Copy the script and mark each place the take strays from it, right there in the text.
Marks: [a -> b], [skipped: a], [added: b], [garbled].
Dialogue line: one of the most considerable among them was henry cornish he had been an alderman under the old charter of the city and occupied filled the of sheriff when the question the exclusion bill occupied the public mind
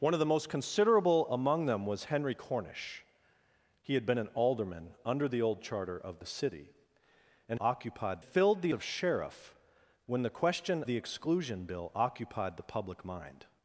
one of the most considerable among them was henry cornish he had been an alderman under the old charter of the city and occupied filled the of sheriff when the question the exclusion bill occupied the public mind